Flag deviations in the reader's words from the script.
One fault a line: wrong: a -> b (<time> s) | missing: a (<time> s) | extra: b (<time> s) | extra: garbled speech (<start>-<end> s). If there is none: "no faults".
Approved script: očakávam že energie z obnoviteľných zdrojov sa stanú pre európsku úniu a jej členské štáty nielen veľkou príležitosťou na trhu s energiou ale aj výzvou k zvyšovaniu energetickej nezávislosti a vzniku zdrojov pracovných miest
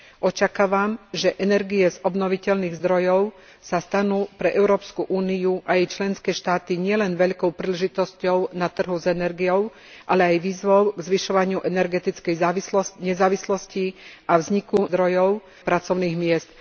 no faults